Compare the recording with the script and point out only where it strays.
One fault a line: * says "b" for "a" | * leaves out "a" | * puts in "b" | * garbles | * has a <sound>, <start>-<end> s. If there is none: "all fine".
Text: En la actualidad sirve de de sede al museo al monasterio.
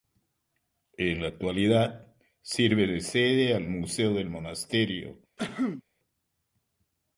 * leaves out "de"
* says "del" for "al"
* has a cough, 5.4-5.8 s